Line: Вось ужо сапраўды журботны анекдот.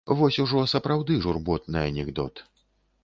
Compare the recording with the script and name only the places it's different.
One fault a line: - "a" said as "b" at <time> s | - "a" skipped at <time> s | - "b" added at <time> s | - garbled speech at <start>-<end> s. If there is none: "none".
none